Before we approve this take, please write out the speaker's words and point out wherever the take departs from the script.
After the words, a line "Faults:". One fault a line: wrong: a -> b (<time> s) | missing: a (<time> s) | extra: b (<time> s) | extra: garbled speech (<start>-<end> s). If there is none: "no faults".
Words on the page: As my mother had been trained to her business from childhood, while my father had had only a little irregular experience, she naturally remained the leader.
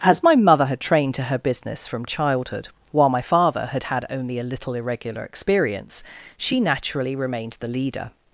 As my mother had trained to her business from childhood, while my father had had only a little irregular experience, she naturally remained the leader.
Faults:
missing: been (0.8 s)